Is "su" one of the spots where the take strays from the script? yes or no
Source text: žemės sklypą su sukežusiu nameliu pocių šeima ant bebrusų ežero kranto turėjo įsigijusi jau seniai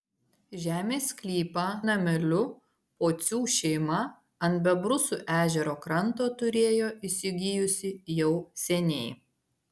yes